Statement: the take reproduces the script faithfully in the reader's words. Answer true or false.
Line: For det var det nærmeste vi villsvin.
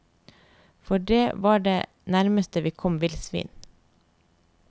false